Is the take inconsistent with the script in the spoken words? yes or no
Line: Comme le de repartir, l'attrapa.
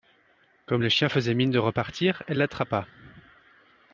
yes